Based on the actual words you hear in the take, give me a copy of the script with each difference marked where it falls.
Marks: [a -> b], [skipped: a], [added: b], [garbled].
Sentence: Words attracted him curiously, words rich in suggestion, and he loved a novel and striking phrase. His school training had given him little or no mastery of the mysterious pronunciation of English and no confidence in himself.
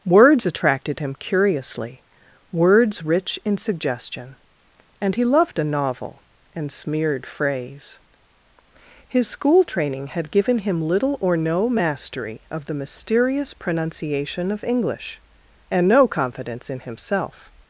Words attracted him curiously, words rich in suggestion, and he loved a novel and [striking -> smeared] phrase. His school training had given him little or no mastery of the mysterious pronunciation of English and no confidence in himself.